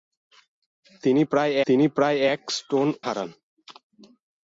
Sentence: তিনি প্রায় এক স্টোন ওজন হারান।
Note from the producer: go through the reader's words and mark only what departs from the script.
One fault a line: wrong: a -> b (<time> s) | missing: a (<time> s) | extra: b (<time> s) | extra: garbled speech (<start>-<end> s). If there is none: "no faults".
extra: তিনি প্রায় (1.7 s)
missing: ওজন (2.9 s)